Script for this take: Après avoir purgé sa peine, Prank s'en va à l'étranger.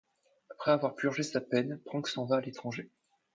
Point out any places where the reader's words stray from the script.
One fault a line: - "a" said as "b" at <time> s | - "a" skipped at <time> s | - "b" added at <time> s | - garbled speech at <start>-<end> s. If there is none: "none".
none